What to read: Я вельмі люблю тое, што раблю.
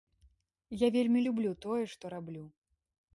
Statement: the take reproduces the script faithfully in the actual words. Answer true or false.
true